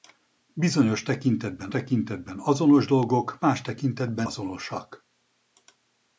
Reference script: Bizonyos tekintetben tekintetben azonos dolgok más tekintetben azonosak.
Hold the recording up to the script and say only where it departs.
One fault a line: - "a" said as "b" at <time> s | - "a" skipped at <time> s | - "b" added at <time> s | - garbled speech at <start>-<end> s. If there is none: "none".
none